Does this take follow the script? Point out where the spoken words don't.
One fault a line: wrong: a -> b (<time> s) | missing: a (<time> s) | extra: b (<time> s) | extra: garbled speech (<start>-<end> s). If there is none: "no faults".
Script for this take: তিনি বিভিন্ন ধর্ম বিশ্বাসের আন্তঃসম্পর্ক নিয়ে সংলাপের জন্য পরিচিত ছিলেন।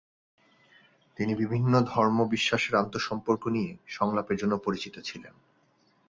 no faults